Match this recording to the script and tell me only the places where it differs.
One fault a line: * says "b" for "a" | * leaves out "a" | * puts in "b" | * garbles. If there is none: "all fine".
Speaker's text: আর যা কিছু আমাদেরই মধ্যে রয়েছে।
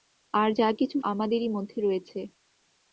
all fine